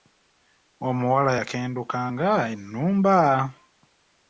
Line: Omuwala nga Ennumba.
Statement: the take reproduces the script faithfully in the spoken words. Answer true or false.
false